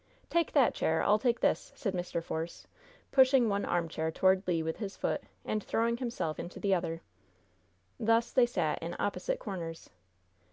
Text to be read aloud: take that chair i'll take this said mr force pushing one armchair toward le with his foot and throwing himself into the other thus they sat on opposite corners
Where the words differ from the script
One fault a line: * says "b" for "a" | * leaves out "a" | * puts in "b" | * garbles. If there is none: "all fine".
* says "in" for "on"